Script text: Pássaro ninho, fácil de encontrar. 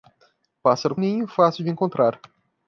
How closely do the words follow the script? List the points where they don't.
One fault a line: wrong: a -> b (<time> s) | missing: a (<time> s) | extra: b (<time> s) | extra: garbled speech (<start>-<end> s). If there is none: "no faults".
no faults